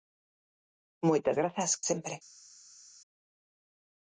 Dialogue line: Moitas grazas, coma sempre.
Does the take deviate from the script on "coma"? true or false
true